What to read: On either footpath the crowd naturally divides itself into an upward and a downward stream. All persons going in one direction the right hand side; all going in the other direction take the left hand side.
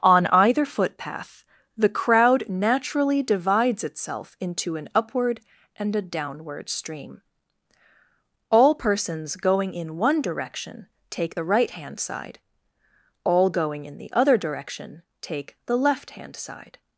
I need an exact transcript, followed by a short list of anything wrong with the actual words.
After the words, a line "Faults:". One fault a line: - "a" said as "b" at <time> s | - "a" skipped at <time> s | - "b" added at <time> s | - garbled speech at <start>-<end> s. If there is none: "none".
On either footpath the crowd naturally divides itself into an upward and a downward stream. All persons going in one direction take the right hand side; all going in the other direction take the left hand side.
Faults:
- "take" added at 11.1 s